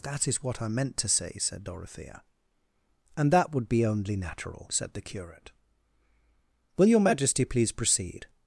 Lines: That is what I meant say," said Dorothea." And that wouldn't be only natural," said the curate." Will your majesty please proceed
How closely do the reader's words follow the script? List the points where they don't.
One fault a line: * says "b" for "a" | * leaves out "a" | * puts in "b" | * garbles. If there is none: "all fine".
* puts in "to"
* says "would" for "wouldn't"